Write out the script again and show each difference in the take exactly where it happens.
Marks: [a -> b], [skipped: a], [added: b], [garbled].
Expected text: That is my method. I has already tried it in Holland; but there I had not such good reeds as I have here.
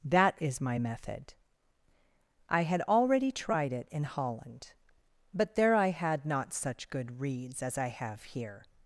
That is my method. I [has -> had] already tried it in Holland; but there I had not such good reeds as I have here.